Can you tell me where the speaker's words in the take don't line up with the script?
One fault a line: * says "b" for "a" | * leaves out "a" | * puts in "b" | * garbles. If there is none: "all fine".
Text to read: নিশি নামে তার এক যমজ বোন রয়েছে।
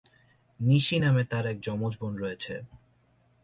all fine